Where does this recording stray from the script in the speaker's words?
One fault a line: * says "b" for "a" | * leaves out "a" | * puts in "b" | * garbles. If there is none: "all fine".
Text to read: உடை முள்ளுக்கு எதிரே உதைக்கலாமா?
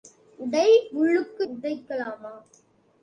* leaves out "எதிரே"